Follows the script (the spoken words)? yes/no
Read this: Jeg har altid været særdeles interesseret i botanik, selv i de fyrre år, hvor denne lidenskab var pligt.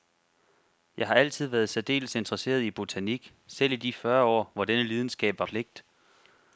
yes